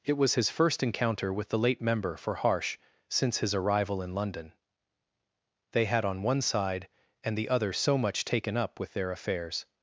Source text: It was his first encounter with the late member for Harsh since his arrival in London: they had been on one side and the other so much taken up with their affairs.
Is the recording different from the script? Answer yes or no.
yes